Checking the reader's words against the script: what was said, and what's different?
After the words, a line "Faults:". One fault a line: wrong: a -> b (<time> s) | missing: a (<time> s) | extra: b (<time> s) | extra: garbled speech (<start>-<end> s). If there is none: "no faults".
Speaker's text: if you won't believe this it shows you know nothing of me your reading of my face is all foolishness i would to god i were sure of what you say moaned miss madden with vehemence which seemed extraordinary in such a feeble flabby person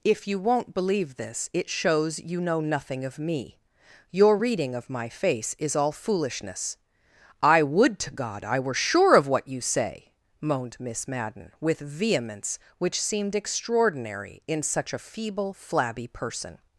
if you won't believe this it shows you know nothing of me your reading of my face is all foolishness i would to god i were sure of what you say moaned miss madden with vehemence which seemed extraordinary in such a feeble flabby person
Faults:
no faults